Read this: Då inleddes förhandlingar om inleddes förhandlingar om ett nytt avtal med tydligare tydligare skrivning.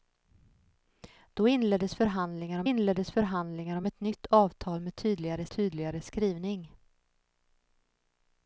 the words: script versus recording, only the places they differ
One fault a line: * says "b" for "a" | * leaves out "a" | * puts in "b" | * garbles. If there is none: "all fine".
all fine